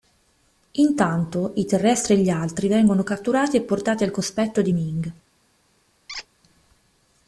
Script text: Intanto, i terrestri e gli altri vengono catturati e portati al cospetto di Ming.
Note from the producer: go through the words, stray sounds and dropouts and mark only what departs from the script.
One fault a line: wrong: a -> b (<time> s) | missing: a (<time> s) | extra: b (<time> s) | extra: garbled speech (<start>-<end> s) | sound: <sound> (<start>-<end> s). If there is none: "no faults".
sound: squeak (6.1-6.3 s)